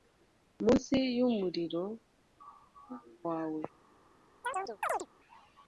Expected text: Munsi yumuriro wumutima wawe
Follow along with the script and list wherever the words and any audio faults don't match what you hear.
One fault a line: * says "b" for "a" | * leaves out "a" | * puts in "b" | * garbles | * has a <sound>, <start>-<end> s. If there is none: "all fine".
* leaves out "wumutima"
* has a chirp, 4.4-5.1 s